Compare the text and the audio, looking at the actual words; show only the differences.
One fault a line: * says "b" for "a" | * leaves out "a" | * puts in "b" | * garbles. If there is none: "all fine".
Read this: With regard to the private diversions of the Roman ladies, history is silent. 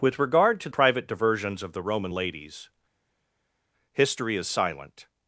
* leaves out "the"